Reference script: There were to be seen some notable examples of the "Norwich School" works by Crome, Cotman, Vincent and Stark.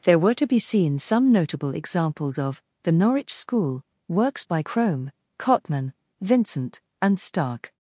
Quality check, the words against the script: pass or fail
pass